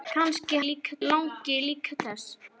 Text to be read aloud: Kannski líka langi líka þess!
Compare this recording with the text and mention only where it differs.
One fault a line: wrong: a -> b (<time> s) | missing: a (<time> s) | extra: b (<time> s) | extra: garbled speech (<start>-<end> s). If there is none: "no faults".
no faults